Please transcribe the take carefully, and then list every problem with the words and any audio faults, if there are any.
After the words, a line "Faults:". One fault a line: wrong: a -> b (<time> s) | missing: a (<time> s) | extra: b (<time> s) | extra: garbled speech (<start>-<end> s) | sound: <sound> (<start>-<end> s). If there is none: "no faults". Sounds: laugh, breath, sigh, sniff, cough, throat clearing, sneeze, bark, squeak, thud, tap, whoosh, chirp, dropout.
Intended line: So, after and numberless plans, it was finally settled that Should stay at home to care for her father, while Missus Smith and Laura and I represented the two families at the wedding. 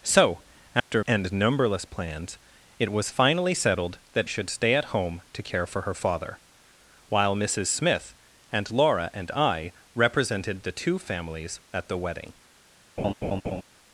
So, after and numberless plans, it was finally settled that Should stay at home to care for her father, while Missus Smith and Laura and I represented the two families at the wedding.
Faults:
sound: dropout (0.8-0.9 s)
sound: laugh (13.0-13.6 s)